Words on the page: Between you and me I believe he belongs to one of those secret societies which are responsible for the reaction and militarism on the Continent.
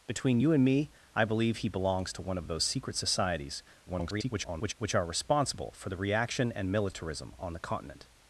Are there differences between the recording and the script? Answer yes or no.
yes